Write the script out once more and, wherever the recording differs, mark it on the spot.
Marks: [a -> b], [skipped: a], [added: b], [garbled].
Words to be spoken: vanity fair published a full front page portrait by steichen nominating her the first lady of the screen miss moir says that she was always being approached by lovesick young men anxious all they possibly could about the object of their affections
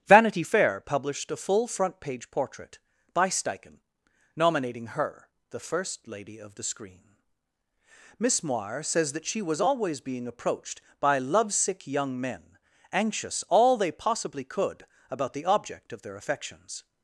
vanity fair published a full front page portrait by steichen nominating her the first lady of the screen miss moir says that she was always being approached by lovesick young men anxious all they possibly could about the object of their affections